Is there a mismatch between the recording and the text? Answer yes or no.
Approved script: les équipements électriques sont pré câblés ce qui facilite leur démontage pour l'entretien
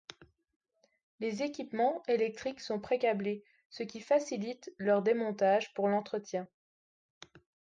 no